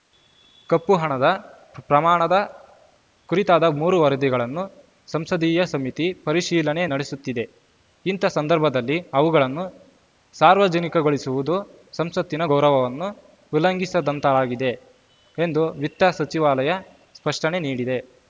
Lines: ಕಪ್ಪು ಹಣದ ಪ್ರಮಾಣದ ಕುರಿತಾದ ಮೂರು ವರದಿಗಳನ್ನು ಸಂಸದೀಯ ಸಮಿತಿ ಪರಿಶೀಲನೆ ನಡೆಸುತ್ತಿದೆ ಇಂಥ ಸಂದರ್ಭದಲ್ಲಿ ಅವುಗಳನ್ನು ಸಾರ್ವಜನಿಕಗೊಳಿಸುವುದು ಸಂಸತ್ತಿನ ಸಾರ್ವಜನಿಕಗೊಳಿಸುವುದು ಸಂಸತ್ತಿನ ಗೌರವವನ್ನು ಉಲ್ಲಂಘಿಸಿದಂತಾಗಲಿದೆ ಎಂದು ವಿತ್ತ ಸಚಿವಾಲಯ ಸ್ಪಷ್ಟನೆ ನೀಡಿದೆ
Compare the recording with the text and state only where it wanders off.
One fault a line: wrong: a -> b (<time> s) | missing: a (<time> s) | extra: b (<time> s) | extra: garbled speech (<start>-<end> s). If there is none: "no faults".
missing: ಸಾರ್ವಜನಿಕಗೊಳಿಸುವುದು ಸಂಸತ್ತಿನ (12.5 s)